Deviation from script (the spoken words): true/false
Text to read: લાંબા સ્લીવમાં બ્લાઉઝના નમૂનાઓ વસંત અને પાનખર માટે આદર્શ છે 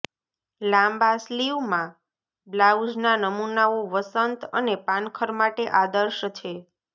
false